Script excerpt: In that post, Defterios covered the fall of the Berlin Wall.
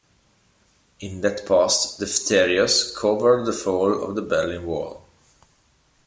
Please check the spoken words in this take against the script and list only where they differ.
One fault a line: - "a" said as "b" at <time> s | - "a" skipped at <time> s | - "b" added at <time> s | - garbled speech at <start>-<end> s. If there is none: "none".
none